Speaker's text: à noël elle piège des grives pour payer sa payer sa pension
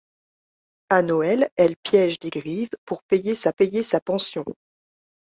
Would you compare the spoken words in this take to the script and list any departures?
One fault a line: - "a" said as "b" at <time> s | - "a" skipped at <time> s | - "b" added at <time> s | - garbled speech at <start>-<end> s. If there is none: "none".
none